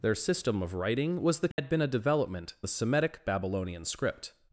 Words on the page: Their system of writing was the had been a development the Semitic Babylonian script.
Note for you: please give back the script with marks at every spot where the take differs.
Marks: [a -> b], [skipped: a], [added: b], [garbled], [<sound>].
Their system of writing was the had [dropout] been a development the Semitic Babylonian script.